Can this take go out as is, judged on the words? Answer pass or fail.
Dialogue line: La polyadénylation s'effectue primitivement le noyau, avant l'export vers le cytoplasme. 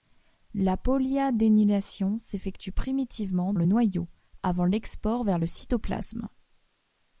pass